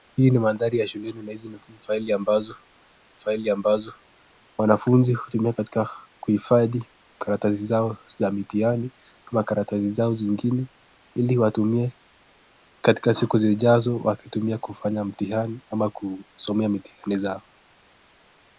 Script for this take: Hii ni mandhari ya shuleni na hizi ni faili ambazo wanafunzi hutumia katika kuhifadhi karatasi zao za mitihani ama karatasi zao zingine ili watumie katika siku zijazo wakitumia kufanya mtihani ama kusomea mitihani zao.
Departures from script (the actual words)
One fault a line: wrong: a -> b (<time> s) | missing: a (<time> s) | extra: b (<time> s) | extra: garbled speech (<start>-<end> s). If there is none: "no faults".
extra: faili ambazo (3.2 s)